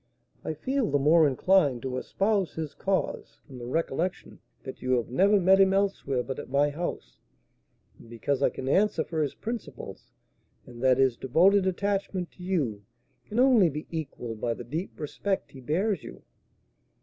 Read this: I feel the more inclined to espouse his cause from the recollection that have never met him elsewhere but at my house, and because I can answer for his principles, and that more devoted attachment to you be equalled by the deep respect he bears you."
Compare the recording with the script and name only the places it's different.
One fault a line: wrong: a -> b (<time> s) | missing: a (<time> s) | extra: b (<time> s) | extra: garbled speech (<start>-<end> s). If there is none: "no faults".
extra: you (4.8 s)
wrong: more -> his (11.0 s)
extra: can only (13.3 s)